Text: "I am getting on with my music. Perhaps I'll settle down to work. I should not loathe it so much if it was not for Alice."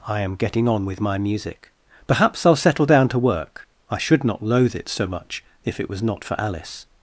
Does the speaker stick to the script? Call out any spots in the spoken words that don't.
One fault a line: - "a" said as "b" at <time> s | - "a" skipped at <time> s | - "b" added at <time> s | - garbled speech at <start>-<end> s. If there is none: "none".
none